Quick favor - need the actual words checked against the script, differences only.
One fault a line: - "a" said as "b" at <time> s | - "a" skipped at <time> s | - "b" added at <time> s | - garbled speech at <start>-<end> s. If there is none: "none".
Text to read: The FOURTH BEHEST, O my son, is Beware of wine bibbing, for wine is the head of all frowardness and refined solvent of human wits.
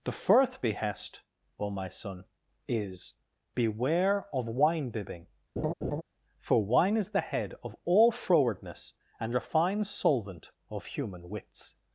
none